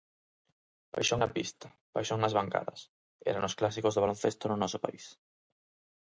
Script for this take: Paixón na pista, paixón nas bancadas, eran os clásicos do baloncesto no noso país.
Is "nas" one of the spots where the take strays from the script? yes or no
no